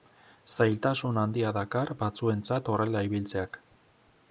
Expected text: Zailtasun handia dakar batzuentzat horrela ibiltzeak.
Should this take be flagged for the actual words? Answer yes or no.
no